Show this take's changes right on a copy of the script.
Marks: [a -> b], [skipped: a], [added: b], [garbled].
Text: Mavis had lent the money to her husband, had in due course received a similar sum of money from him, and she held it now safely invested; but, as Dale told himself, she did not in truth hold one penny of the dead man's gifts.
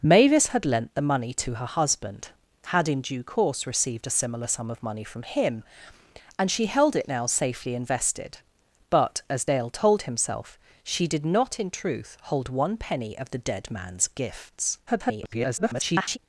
Mavis had lent the money to her husband, had in due course received a similar sum of money from him, and she held it now safely invested; but, as Dale told himself, she did not in truth hold one penny of the dead man's gifts. [garbled]